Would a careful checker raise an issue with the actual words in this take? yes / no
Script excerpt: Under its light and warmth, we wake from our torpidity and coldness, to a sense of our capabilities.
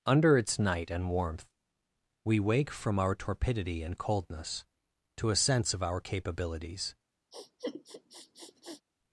yes